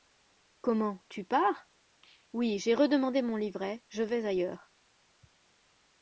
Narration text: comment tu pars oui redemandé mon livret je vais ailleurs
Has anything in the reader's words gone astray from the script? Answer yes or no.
yes